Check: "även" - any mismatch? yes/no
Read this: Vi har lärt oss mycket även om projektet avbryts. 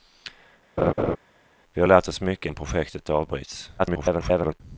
yes